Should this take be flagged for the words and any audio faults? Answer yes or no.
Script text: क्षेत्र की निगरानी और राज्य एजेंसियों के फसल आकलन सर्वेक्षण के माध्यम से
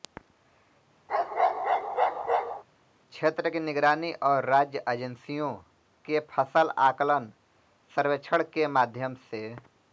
yes